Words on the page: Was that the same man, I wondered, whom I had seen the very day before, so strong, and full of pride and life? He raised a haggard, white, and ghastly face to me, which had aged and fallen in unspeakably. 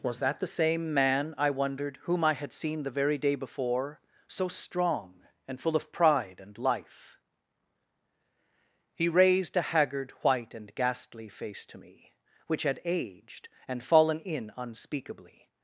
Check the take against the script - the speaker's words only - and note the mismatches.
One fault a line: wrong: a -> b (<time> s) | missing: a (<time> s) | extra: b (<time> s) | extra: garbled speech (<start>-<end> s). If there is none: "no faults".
no faults